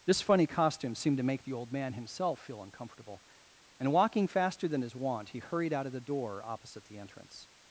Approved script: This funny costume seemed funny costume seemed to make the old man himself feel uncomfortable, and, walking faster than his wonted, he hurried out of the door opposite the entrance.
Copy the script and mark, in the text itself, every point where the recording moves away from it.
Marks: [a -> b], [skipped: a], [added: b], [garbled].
This funny costume seemed [skipped: funny costume seemed] to make the old man himself feel uncomfortable, and, walking faster than his [wonted, -> wont] he hurried out of the door opposite the entrance.